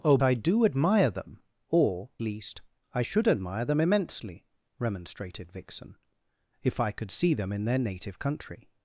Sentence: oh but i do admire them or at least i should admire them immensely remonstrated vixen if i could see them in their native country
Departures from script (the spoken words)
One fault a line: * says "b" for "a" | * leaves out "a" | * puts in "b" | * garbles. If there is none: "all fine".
* leaves out "but"
* leaves out "at"